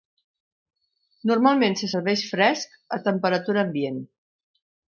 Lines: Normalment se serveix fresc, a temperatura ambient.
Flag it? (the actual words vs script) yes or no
no